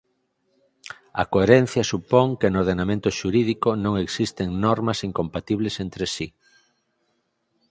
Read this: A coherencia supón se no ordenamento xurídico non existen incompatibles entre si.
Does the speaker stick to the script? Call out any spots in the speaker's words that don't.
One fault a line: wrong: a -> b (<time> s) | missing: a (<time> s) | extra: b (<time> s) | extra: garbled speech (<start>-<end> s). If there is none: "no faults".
wrong: se -> que (2.4 s)
extra: normas (4.7 s)